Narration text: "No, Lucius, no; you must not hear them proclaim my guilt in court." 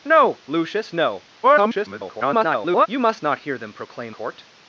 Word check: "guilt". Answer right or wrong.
wrong